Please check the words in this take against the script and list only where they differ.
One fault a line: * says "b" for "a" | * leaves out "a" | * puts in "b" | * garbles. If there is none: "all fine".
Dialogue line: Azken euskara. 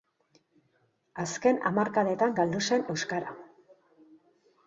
* puts in "hamarkadetan galdu zen"